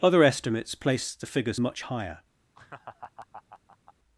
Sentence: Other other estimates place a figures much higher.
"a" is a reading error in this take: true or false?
true